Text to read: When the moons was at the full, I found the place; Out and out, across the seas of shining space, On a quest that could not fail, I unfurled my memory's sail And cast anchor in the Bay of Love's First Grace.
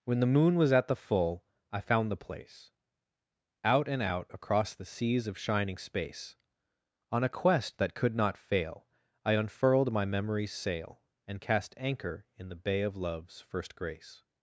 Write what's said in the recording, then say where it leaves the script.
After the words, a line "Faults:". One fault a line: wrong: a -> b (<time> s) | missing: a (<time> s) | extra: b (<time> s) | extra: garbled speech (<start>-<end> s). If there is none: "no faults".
When the moon was at the full, I found the place; Out and out, across the seas of shining space, On a quest that could not fail, I unfurled my memory's sail And cast anchor in the Bay of Love's First Grace.
Faults:
wrong: moons -> moon (0.3 s)